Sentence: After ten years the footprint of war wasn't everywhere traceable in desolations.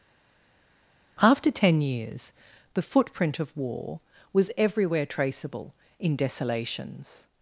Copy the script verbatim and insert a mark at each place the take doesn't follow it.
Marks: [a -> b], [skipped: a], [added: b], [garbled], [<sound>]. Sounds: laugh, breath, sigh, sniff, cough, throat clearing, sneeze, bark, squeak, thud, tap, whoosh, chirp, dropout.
After ten years the footprint of war [wasn't -> was] everywhere traceable in desolations.